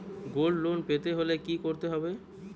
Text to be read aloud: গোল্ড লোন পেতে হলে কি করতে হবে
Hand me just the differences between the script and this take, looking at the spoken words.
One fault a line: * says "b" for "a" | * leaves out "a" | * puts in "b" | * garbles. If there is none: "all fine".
all fine